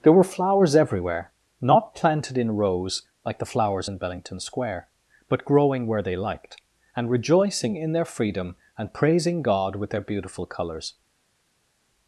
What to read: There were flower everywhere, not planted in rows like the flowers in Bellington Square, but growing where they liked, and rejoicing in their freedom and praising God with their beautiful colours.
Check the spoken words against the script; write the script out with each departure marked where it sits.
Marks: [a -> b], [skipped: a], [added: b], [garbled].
There were [flower -> flowers] everywhere, not planted in rows like the flowers in Bellington Square, but growing where they liked, and rejoicing in their freedom and praising God with their beautiful colours.